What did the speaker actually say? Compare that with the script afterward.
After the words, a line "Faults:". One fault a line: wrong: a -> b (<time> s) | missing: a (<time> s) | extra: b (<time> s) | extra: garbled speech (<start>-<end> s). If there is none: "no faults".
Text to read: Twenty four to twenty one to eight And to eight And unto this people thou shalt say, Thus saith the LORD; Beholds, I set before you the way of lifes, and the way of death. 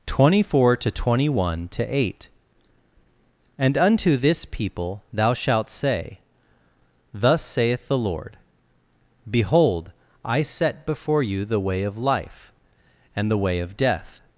Twenty four to twenty one to eight And unto this people thou shalt say, Thus saith the LORD; Behold, I set before you the way of life, and the way of death.
Faults:
missing: to eight And (3.8 s)
wrong: Beholds -> Behold (9.3 s)
wrong: lifes -> life (12.0 s)